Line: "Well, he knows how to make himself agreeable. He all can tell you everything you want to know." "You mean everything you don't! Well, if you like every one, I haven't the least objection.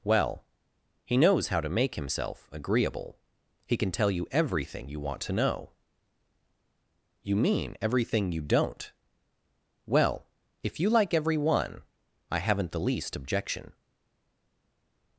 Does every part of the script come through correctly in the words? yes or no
no